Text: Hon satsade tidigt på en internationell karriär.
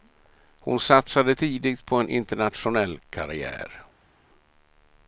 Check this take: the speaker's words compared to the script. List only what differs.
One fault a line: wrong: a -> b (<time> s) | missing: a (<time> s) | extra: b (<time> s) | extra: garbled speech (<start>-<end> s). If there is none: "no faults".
no faults